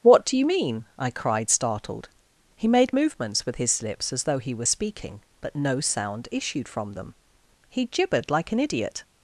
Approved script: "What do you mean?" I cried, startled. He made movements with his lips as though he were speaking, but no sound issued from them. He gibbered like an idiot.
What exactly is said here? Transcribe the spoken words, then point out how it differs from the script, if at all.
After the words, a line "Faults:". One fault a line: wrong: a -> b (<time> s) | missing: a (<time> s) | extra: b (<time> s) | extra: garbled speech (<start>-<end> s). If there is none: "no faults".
"What do you mean?" I cried, startled. He made movements with his lips as though he were speaking, but no sound issued from them. He gibbered like an idiot.
Faults:
no faults